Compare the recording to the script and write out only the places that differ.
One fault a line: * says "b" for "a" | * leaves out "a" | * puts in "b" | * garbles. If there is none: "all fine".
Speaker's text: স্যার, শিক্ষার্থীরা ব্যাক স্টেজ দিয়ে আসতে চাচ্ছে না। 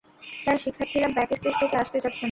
* says "থেকে" for "দিয়ে"